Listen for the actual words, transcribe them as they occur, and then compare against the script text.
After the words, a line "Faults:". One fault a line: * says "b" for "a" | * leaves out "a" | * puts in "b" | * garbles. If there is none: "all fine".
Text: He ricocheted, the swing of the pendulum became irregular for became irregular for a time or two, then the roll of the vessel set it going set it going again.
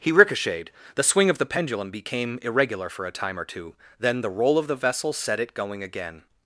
He ricocheted, the swing of the pendulum became irregular for a time or two, then the roll of the vessel set it going again.
Faults:
* leaves out "became irregular for"
* leaves out "set it going"